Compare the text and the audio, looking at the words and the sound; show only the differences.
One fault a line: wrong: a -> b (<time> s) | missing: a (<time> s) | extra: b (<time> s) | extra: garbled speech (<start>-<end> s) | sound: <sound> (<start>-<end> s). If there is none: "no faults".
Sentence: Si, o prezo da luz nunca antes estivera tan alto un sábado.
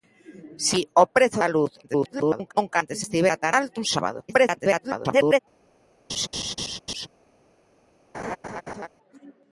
extra: garbled speech (1.8-2.5 s)
extra: garbled speech (4.3-5.4 s)
sound: laugh (6.1-7.1 s)
sound: laugh (8.1-8.9 s)